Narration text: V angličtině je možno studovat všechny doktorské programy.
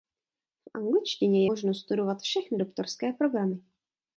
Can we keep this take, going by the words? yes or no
no